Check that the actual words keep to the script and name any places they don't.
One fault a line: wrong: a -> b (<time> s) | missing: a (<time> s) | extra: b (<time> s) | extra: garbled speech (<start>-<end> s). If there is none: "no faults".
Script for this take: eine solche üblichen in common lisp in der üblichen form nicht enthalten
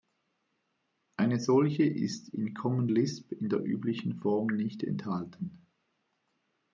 wrong: üblichen -> ist (1.8 s)